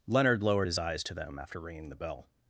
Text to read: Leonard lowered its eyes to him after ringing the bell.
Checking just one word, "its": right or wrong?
wrong